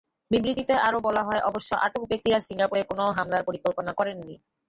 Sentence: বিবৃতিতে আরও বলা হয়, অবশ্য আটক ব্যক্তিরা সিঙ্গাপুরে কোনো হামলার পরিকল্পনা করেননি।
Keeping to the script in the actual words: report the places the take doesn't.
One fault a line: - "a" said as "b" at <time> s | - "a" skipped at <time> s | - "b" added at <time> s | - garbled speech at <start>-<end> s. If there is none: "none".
none